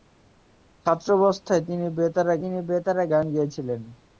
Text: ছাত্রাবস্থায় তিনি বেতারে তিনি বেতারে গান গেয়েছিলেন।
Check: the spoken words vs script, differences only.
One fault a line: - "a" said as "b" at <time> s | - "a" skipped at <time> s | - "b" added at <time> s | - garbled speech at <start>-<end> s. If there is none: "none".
none